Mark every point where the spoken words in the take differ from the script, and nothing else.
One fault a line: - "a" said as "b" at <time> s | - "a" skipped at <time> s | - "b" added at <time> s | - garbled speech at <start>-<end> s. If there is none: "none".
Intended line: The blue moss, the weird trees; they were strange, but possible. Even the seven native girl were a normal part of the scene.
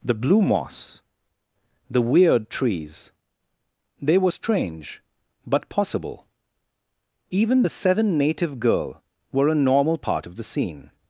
none